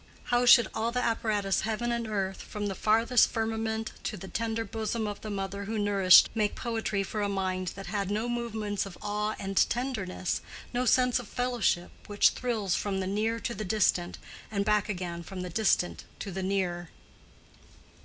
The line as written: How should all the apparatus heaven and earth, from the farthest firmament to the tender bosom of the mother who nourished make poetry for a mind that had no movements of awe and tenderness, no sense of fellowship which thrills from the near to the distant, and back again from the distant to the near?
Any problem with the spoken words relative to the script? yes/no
no